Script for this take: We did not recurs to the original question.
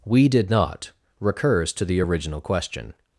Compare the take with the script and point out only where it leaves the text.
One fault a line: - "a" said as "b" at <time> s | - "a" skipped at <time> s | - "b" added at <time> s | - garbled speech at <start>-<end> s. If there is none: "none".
none